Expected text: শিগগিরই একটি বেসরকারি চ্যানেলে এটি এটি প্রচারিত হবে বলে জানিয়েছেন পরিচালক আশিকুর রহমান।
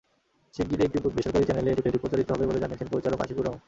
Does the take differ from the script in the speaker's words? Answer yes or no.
no